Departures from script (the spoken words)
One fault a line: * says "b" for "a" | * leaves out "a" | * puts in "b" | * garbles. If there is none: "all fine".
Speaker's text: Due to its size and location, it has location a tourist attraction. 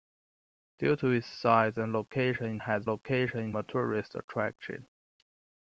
all fine